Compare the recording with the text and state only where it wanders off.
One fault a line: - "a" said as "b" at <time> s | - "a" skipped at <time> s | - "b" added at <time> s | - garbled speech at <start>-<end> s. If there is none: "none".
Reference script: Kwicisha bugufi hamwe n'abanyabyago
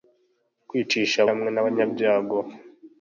- "bugufi" skipped at 1.2 s